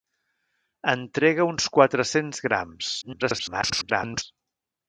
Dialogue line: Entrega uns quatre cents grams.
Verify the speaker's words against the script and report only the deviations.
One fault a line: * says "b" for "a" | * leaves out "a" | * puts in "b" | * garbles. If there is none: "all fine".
* garbles